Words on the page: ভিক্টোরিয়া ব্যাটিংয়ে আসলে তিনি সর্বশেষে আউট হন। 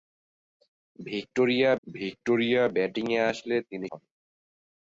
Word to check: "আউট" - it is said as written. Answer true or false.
false